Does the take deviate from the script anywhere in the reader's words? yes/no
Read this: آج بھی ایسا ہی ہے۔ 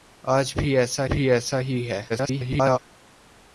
yes